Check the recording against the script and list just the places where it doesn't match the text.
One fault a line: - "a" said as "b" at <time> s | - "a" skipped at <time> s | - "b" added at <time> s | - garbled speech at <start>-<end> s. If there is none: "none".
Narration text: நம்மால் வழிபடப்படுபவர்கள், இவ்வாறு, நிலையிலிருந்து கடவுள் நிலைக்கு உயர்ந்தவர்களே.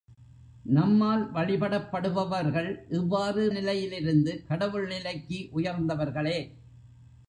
none